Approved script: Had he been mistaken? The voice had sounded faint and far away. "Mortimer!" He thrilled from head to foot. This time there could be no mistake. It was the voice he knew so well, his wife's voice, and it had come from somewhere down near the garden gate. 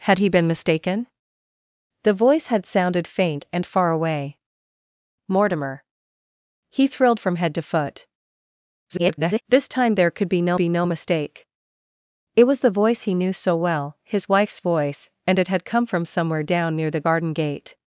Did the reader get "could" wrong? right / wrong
right